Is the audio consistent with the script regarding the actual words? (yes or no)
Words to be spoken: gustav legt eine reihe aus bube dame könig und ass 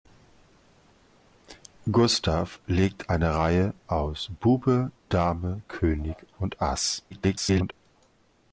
no